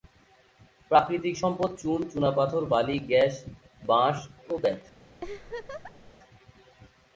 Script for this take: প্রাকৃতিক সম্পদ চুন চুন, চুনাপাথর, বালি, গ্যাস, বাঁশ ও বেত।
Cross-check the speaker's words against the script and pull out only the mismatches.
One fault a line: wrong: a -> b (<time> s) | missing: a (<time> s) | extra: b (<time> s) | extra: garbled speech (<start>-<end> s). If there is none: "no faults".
missing: চুন (2.0 s)